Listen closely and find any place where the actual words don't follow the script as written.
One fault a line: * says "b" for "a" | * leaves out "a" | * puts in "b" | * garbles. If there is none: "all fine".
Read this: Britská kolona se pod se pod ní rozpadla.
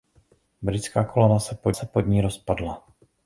all fine